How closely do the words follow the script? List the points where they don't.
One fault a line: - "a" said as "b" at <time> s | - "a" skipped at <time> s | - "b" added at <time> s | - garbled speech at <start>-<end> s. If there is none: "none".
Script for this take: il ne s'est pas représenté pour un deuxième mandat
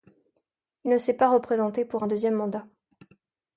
none